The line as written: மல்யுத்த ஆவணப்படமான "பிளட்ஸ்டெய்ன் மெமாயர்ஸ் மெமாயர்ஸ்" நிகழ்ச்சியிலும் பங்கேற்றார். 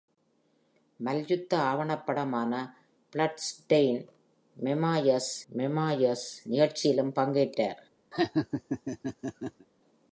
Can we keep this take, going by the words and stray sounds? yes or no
no